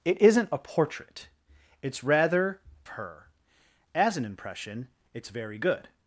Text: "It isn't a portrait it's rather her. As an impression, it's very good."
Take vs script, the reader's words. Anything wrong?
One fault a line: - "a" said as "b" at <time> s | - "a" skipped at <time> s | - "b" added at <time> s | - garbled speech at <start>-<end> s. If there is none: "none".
none